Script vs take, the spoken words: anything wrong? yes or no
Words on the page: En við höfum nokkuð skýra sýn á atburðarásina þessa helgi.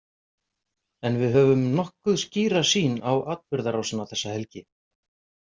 no